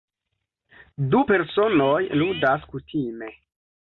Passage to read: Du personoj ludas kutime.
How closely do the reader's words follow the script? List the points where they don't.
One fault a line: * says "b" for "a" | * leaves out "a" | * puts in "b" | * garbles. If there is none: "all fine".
all fine